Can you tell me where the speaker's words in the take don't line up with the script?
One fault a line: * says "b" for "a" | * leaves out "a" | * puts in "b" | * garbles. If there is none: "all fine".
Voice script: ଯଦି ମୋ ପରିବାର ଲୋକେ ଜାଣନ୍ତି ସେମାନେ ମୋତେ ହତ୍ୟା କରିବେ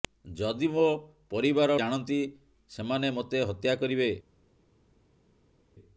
* leaves out "ଲୋକେ"